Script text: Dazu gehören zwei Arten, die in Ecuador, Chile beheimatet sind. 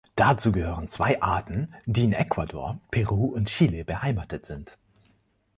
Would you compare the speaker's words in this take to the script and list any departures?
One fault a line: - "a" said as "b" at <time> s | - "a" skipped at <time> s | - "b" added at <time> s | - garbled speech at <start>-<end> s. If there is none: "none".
- "Peru und" added at 2.9 s